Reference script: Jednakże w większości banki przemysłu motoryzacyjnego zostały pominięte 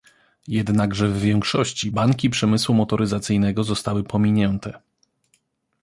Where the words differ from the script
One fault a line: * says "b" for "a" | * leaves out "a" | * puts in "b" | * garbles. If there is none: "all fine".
all fine